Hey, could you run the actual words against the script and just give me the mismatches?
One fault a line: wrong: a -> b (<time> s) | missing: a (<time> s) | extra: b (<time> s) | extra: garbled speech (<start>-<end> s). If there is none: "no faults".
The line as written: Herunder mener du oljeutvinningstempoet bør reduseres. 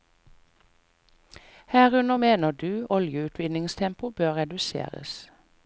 no faults